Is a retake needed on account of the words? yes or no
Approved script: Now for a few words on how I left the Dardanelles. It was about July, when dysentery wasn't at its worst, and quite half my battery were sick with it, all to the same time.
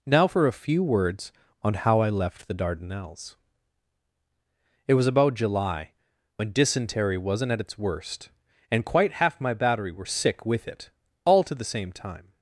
no